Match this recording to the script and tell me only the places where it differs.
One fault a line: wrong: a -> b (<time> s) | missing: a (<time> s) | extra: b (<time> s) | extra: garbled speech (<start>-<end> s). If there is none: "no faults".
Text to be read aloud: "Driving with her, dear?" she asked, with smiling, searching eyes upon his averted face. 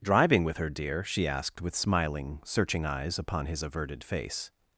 no faults